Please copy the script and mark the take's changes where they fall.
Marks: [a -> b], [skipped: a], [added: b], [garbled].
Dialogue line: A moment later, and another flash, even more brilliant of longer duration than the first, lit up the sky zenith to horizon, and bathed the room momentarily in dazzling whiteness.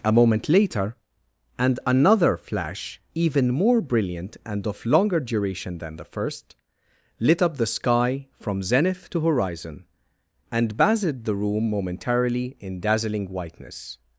A moment later, and another flash, even more brilliant [added: and] of longer duration than the first, lit up the sky [added: from] zenith to horizon, and bathed the room momentarily in dazzling whiteness.